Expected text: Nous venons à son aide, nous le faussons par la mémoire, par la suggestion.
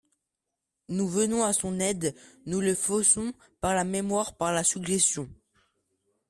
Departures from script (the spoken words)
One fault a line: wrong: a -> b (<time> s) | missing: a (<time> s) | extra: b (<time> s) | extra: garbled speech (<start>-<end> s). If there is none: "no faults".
no faults